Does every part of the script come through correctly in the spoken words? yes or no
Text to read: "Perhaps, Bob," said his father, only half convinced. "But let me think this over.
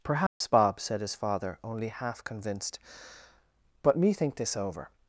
no